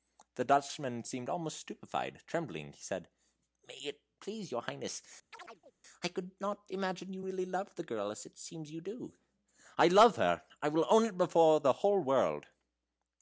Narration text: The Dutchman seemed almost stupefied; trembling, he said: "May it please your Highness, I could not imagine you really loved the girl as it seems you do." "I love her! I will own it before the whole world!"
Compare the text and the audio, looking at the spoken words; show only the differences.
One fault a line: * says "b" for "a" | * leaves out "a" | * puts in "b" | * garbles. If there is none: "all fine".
all fine